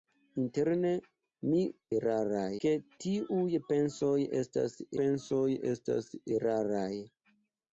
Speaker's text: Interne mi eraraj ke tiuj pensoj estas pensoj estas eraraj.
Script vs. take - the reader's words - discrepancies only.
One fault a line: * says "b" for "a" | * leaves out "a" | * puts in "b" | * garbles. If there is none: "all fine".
all fine